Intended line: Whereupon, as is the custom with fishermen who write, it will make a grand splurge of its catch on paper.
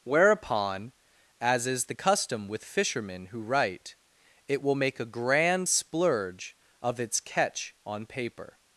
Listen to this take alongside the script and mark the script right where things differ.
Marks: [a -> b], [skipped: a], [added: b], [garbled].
Whereupon, as is the custom with fishermen who write, it will make a grand splurge of its catch on paper.